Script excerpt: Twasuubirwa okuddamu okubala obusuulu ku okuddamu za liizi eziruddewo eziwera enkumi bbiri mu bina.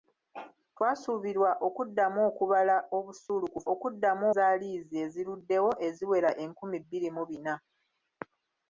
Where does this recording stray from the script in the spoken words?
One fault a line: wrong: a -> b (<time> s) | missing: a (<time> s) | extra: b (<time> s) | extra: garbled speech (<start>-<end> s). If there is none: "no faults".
no faults